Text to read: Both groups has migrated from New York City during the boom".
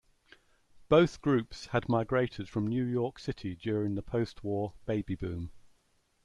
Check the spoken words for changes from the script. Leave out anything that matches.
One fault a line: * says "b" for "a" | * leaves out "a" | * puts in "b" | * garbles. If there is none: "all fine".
* says "had" for "has"
* puts in "post war baby"